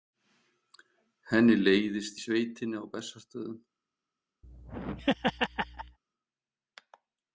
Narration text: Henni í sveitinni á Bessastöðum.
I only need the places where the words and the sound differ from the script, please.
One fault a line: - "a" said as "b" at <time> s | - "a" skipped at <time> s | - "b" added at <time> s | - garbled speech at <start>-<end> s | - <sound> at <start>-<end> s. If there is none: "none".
- "leiðist" added at 1.6 s
- laugh at 4.4-6.0 s